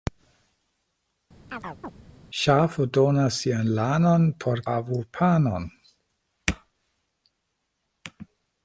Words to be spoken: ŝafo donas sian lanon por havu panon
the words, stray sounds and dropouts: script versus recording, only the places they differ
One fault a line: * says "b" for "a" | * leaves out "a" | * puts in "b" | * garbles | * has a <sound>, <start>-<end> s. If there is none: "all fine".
* has a chirp, 1.5-1.9 s